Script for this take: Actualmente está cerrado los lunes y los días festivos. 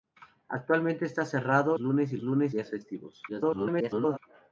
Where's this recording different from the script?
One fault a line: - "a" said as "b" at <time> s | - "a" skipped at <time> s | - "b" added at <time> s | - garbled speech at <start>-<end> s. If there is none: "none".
- "los" skipped at 1.8 s
- "los" said as "lunes" at 2.2 s
- garbled speech at 3.3-4.2 s